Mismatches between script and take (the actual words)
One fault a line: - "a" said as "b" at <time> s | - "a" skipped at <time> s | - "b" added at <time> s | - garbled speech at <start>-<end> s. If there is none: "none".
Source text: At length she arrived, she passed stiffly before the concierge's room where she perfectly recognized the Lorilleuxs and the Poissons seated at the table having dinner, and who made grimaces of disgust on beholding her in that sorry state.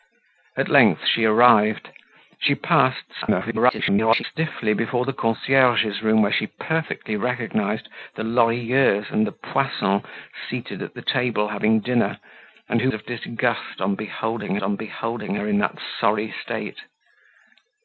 - garbled speech at 3.2-4.2 s
- "made grimaces of disgust" said as "of disgust on beholding" at 12.9 s